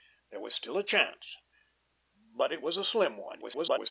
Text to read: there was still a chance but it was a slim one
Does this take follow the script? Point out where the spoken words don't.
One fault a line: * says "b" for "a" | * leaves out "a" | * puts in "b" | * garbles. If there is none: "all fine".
* garbles